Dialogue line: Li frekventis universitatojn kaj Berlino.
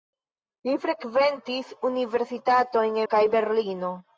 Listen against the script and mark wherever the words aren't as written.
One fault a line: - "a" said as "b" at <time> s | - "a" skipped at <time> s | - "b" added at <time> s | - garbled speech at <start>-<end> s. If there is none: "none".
none